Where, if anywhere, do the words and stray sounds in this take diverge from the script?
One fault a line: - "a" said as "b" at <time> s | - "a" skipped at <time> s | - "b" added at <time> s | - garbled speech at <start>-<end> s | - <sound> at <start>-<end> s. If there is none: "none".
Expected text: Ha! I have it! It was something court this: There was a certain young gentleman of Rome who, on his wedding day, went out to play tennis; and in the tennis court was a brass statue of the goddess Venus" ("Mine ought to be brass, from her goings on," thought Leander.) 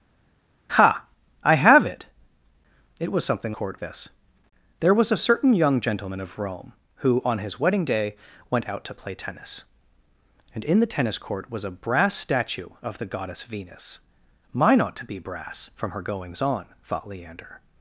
none